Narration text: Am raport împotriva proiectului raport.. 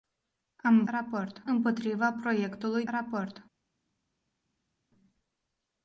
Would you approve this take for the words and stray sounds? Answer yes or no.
yes